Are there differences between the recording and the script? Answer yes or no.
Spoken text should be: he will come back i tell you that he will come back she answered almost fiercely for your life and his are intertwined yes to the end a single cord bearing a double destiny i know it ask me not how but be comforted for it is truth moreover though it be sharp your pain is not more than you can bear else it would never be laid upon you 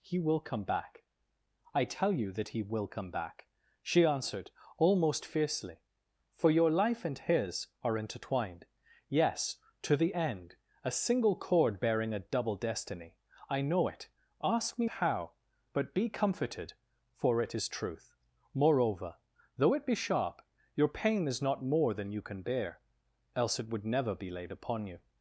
yes